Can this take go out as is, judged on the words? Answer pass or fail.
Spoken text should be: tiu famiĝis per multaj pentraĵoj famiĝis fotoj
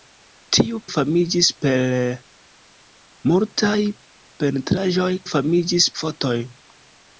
pass